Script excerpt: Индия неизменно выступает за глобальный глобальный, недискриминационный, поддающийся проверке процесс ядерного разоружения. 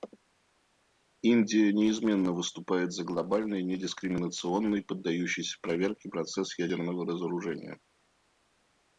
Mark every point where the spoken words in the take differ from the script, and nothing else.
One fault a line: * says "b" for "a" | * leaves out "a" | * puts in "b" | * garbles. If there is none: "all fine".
* leaves out "глобальный"